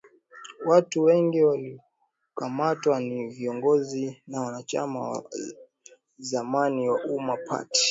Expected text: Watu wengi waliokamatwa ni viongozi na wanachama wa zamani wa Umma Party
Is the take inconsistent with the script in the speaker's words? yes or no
no